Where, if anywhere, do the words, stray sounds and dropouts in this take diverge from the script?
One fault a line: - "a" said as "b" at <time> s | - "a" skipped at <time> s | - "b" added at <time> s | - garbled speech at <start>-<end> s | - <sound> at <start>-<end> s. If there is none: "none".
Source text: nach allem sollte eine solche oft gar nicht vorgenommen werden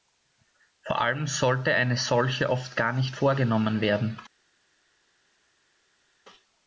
- "nach" said as "vor" at 0.8 s